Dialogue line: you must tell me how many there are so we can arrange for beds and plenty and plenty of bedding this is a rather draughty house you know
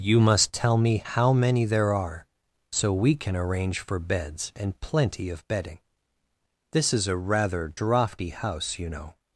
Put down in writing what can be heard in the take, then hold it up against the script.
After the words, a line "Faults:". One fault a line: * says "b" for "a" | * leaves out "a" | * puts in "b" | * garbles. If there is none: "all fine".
you must tell me how many there are so we can arrange for beds and plenty of bedding this is a rather draughty house you know
Faults:
* leaves out "and plenty"